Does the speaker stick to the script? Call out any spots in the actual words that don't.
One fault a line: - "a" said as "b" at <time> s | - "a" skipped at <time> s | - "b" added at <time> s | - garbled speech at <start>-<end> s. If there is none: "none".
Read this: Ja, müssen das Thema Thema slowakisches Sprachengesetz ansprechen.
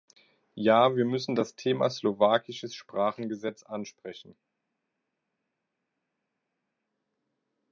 - "wir" added at 0.9 s
- "Thema" skipped at 1.9 s